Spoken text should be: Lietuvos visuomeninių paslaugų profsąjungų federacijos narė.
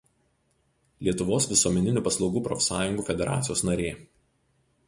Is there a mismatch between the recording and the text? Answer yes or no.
no